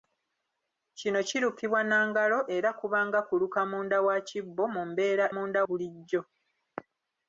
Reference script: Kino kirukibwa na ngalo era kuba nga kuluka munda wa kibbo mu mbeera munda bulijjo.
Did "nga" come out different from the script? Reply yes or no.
no